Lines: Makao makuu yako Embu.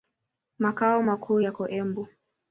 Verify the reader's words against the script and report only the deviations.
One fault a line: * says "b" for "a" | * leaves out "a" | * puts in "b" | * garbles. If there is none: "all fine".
all fine